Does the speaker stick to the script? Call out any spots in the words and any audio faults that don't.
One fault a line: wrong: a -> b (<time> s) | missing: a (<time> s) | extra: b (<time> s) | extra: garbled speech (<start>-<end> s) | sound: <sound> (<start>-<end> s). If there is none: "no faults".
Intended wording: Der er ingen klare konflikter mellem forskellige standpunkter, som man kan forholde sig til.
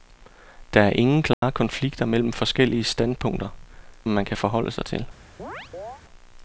sound: dropout (1.3-1.4 s)
missing: som (3.5 s)
sound: chirp (5.4-6.0 s)